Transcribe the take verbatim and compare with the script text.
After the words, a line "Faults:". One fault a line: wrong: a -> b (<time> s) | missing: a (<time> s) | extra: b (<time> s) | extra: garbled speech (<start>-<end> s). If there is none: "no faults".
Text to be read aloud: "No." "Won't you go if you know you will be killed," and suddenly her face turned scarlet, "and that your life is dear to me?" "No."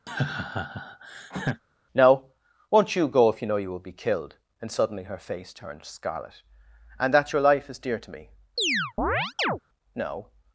"No." "Won't you go if you know you will be killed," and suddenly her face turned scarlet, "and that your life is dear to me?" "No."
Faults:
no faults